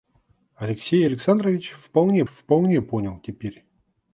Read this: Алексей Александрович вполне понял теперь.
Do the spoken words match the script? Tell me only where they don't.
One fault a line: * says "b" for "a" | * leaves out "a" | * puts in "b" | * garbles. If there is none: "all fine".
* puts in "вполне"